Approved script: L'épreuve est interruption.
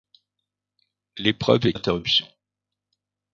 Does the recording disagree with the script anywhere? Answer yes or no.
no